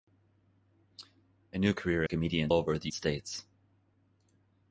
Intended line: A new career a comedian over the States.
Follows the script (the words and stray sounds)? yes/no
yes